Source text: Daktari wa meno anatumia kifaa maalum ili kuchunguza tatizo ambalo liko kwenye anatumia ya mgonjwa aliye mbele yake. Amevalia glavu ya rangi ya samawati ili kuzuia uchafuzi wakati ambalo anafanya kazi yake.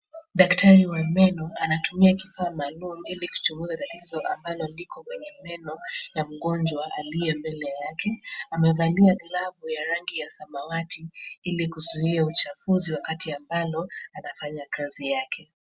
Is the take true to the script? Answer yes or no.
no